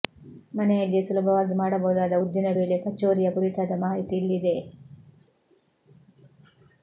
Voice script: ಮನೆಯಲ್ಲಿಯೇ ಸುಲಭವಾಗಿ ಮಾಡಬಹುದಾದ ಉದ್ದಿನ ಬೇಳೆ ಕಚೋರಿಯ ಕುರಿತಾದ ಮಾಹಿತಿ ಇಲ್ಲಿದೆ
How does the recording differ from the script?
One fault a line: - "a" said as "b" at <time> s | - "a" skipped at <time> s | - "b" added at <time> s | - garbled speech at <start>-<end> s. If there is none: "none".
none